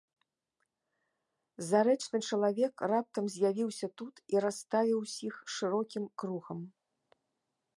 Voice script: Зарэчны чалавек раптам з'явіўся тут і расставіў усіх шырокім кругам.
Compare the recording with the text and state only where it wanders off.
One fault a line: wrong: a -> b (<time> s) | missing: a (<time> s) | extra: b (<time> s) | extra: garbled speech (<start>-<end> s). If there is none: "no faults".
no faults